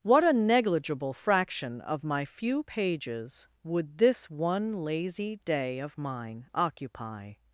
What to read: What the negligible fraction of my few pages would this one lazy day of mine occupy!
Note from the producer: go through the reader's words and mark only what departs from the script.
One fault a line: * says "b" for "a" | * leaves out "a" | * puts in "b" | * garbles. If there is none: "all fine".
* says "a" for "the"